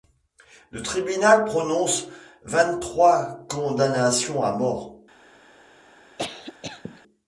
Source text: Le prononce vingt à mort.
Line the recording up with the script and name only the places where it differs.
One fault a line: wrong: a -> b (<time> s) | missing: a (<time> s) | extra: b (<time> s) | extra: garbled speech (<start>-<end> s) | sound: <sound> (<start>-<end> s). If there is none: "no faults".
extra: tribunal (0.8 s)
extra: trois condamnations (2.8 s)
sound: cough (6.2-7.0 s)